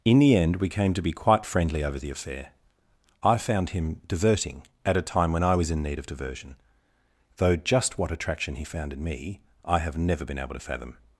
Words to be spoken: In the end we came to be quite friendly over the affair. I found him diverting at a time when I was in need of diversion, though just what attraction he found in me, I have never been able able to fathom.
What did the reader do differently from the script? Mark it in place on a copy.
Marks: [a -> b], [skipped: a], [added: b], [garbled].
In the end we came to be quite friendly over the affair. I found him diverting at a time when I was in need of diversion, though just what attraction he found in me, I have never been able [skipped: able] to fathom.